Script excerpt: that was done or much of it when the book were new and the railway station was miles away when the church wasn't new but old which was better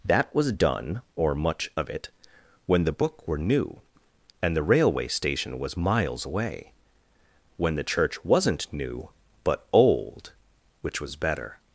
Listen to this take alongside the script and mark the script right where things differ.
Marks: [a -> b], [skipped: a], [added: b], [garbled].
that was done or much of it when the book were new and the railway station was miles away when the church wasn't new but old which was better